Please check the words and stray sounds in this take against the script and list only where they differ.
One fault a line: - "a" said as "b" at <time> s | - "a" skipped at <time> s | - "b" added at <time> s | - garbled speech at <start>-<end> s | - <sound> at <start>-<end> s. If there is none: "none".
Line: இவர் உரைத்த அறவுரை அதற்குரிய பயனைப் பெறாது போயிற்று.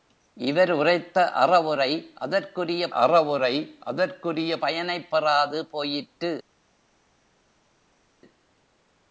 - "அறவுரை அதற்குரிய" added at 2.9 s